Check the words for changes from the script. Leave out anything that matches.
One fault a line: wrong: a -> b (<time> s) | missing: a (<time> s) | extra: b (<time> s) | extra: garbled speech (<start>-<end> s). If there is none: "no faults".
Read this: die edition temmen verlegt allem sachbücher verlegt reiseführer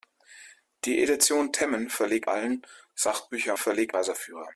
no faults